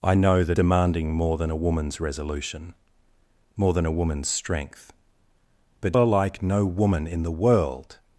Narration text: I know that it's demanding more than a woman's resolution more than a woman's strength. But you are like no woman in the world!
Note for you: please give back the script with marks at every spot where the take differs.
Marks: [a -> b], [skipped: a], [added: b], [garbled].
I know that [skipped: it's] demanding more than a woman's resolution more than a woman's strength. But [skipped: you] are like no woman in the world!